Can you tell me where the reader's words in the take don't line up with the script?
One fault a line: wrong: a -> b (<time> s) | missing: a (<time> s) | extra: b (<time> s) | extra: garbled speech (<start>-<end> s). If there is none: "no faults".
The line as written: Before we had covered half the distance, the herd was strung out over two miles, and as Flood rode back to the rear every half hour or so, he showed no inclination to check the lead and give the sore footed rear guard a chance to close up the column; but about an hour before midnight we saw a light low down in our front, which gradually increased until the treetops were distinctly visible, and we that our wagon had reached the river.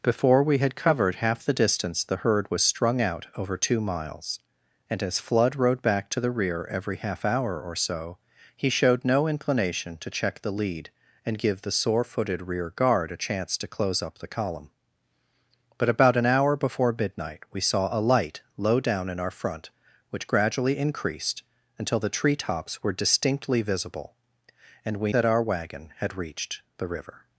no faults